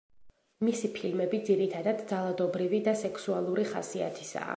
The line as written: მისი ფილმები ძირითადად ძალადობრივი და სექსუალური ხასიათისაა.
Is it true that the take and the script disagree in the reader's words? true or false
false